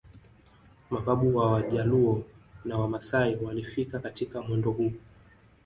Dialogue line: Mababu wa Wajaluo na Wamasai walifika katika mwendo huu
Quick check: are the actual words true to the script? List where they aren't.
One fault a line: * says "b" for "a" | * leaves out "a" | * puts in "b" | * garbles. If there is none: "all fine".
all fine